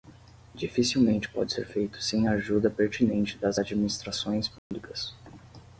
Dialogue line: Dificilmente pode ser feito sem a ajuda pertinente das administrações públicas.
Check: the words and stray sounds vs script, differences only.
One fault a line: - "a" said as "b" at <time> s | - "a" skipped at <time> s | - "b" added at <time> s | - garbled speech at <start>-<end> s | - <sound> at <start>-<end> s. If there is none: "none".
- dropout at 4.6-4.7 s